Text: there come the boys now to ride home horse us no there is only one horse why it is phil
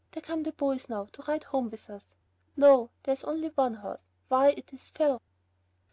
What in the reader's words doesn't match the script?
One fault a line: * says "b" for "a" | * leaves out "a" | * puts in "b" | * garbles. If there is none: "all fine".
* says "with" for "horse"